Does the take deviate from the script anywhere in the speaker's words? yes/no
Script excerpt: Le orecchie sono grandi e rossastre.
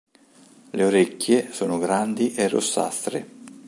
no